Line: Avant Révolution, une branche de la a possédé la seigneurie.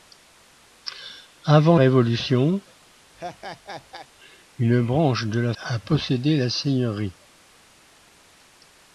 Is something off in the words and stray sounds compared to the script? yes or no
yes